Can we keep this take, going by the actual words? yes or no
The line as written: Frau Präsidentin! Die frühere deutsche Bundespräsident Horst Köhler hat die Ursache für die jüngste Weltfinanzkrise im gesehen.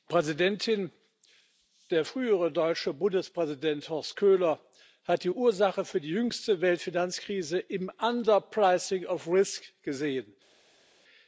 no